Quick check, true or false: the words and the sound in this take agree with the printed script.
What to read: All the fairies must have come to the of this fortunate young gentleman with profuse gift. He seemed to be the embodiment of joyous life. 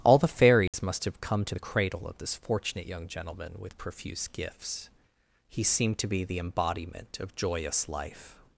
false